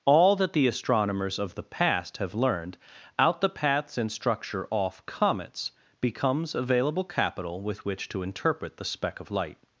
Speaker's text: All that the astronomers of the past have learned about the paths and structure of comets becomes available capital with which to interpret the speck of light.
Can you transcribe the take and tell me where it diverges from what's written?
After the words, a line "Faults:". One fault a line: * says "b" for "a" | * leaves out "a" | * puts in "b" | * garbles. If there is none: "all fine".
All that the astronomers of the past have learned out the paths and structure off comets becomes available capital with which to interpret the speck of light.
Faults:
* says "out" for "about"
* says "off" for "of"